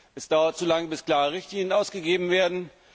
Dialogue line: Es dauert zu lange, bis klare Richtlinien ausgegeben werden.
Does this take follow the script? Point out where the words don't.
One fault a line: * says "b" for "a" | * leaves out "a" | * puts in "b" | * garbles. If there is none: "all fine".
all fine